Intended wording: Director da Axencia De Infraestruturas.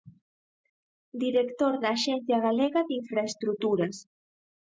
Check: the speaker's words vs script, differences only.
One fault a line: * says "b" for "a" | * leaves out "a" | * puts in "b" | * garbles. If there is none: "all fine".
* puts in "Galega"